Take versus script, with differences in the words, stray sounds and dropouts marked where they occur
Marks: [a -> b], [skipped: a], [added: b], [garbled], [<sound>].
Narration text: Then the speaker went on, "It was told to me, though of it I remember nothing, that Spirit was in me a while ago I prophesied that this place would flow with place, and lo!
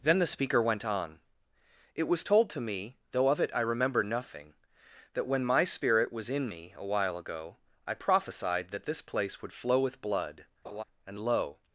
Then the speaker went on, "It was told to me, though of it I remember nothing, that [added: when my] Spirit was in me a while ago I prophesied that this place would flow with [place, -> blood] [laugh] and lo!